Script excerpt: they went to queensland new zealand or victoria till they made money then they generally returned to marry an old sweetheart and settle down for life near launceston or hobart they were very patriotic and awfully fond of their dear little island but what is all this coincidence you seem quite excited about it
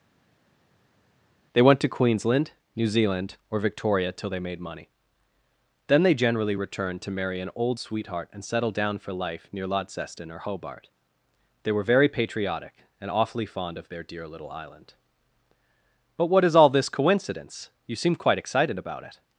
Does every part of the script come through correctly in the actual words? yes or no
yes